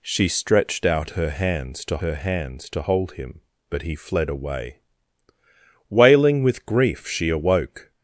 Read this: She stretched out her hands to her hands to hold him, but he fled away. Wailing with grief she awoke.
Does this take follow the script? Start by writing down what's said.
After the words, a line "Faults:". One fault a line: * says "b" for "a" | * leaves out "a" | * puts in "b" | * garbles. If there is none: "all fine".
She stretched out her hands to her hands to hold him, but he fled away. Wailing with grief she awoke.
Faults:
all fine